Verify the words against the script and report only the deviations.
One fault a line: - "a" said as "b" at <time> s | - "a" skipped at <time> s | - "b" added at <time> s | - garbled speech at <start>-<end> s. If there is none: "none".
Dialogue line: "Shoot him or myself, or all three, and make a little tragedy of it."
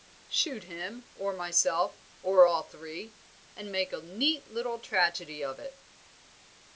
- "neat" added at 4.0 s